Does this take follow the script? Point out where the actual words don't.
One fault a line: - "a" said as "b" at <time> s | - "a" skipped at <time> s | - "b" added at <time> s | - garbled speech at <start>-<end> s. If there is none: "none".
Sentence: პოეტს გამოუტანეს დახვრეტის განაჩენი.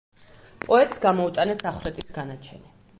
none